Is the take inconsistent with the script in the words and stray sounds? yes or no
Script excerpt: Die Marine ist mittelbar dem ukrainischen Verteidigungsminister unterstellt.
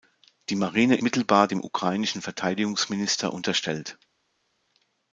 yes